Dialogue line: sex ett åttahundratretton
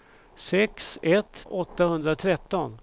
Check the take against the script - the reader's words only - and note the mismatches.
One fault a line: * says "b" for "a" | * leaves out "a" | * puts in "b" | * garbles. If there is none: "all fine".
all fine